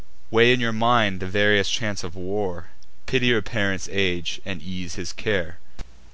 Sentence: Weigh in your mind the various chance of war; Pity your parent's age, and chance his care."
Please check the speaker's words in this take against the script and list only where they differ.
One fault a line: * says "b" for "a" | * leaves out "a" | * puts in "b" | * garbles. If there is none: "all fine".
* says "ease" for "chance"